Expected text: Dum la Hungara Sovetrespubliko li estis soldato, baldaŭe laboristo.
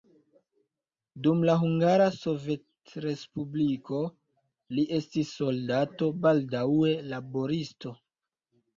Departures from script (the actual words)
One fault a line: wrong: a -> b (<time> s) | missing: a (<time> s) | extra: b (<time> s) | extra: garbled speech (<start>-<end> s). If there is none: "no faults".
no faults